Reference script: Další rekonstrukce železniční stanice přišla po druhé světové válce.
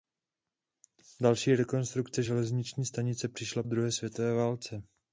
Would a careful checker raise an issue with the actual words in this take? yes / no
yes